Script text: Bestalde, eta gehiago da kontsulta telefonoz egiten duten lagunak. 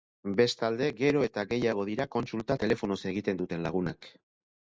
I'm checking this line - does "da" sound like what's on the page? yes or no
no